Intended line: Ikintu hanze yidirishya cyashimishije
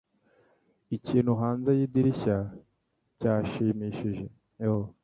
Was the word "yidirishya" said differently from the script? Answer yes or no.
no